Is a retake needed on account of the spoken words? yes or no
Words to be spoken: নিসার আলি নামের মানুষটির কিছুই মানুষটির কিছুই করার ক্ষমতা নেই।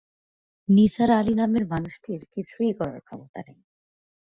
yes